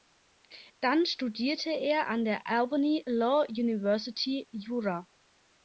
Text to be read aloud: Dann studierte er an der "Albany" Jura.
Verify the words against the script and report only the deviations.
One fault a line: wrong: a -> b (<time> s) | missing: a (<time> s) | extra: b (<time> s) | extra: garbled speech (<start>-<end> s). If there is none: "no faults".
extra: Law University (3.0 s)